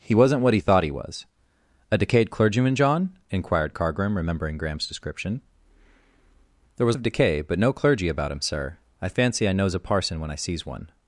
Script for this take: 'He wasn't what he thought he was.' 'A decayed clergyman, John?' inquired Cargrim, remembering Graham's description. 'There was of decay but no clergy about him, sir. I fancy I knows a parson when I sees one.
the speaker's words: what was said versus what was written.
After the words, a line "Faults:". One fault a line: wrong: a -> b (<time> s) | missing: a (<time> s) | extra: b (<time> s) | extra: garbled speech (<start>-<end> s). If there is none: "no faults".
'He wasn't what he thought he was.' 'A decayed clergyman, John?' inquired Cargrim, remembering Graham's description. 'There was of decay but no clergy about him, sir. I fancy I knows a parson when I sees one.
Faults:
no faults